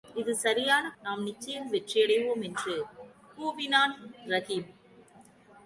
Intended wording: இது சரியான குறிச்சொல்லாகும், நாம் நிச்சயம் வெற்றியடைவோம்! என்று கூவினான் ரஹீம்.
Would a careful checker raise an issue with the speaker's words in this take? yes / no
yes